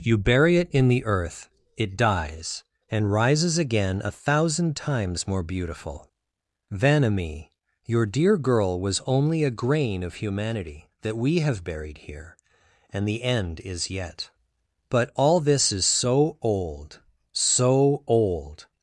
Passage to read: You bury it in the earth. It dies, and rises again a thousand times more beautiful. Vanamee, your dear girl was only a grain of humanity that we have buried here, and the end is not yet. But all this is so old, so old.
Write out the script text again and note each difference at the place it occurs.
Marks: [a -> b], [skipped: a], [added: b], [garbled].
You bury it in the earth. It dies, and rises again a thousand times more beautiful. Vanamee, your dear girl was only a grain of humanity that we have buried here, and the end is [skipped: not] yet. But all this is so old, so old.